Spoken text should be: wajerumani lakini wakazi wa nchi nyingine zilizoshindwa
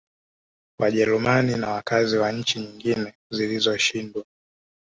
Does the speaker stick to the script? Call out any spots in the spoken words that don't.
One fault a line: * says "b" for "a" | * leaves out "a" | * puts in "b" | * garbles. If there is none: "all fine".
* says "na" for "lakini"